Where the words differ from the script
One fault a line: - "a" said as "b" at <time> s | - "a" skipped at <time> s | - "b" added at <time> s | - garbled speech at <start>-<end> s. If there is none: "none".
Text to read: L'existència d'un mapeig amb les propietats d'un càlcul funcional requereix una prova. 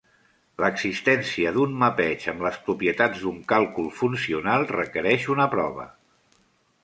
none